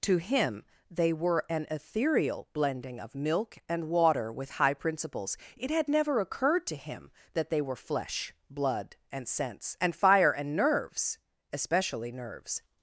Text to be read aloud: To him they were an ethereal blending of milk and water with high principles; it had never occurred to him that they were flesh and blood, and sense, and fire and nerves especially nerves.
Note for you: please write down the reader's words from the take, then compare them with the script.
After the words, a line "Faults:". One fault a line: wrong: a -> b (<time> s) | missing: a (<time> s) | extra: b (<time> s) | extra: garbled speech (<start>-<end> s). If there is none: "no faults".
To him they were an ethereal blending of milk and water with high principles; it had never occurred to him that they were flesh blood, and sense, and fire and nerves especially nerves.
Faults:
missing: and (8.3 s)